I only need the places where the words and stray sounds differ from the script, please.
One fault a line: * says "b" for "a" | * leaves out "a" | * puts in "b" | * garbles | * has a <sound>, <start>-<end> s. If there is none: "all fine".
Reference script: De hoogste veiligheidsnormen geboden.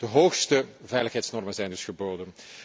* puts in "zijn dus"